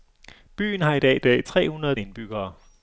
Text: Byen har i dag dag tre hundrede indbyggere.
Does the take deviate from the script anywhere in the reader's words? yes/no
no